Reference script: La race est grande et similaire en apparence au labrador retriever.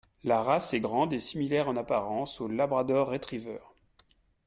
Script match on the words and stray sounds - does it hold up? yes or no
yes